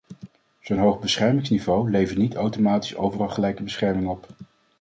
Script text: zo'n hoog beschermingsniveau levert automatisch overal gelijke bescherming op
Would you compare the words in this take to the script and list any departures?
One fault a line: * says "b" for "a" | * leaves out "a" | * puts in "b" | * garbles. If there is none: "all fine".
* puts in "niet"